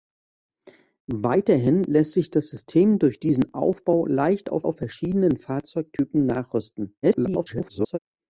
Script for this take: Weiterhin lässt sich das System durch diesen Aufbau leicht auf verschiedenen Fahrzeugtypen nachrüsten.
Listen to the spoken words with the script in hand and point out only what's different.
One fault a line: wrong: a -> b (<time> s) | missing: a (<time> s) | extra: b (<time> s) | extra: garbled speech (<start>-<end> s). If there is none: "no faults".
extra: auf (4.6 s)
extra: garbled speech (7.0-8.0 s)